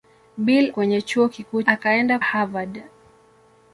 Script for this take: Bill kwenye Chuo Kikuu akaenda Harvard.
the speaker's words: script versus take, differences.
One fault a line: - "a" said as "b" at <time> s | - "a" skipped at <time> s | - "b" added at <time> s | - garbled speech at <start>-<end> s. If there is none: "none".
none